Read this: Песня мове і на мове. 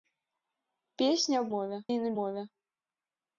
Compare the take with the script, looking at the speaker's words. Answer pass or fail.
pass